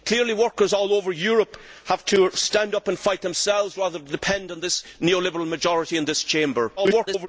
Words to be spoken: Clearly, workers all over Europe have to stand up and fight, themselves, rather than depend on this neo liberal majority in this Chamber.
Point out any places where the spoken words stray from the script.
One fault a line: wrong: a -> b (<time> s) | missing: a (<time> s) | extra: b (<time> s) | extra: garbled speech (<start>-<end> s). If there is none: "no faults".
extra: garbled speech (6.8-7.3 s)